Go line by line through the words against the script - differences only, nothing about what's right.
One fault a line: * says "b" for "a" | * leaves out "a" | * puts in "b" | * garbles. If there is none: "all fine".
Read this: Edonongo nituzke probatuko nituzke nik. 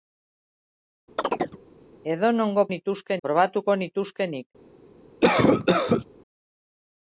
all fine